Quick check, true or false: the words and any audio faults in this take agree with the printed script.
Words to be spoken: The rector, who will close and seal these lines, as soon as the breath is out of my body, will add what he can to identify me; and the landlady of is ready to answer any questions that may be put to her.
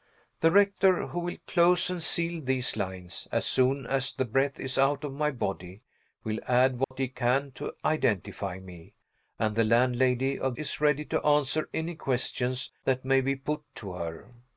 false